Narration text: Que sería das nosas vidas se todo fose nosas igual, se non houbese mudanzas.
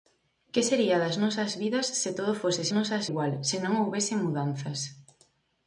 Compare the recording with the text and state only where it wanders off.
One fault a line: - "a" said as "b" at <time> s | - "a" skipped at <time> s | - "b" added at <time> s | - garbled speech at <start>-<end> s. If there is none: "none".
none